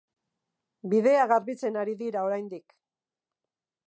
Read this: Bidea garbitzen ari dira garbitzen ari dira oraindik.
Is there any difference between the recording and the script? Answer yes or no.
yes